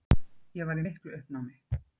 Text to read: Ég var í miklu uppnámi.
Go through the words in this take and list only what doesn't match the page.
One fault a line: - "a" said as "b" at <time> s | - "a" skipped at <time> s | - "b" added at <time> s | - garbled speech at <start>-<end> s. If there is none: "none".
none